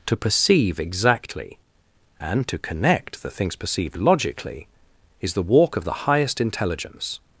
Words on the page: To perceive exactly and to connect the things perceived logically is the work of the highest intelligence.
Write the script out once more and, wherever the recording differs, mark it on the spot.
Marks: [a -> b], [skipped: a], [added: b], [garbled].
To perceive exactly and to connect the things perceived logically is the [work -> walk] of the highest intelligence.